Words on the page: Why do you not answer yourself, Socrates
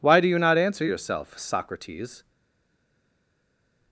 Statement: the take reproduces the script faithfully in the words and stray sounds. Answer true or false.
true